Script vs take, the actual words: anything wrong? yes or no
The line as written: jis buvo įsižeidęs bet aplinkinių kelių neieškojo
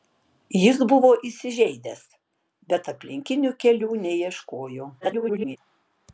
yes